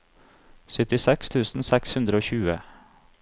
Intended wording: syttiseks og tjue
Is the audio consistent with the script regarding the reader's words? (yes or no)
no